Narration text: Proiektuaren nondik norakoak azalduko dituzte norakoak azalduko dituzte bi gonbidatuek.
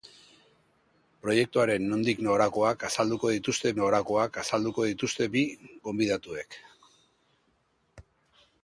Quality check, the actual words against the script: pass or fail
pass